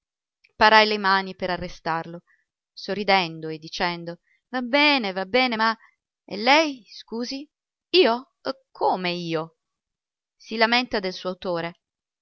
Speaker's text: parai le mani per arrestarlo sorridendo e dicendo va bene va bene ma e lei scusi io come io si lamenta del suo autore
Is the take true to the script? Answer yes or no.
yes